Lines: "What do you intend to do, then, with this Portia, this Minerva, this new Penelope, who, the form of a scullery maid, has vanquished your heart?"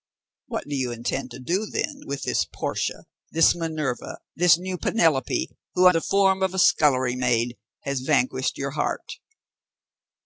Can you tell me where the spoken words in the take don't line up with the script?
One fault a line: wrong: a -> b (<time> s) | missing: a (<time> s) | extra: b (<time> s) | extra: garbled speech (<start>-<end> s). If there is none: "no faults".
no faults